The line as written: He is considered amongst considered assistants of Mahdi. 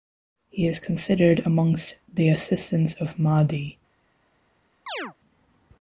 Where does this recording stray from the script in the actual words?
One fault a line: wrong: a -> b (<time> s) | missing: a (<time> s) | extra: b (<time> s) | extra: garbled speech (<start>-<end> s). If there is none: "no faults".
wrong: considered -> the (2.1 s)